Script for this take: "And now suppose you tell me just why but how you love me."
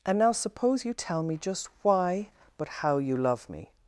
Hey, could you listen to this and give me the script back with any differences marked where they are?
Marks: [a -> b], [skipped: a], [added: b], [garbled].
"And now suppose you tell me just why but how you love me."